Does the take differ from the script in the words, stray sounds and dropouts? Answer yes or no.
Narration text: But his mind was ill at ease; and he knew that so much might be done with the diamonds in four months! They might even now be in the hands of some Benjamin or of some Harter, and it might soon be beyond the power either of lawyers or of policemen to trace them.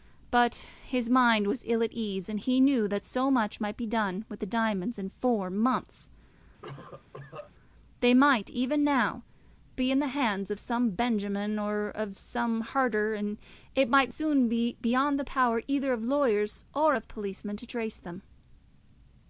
yes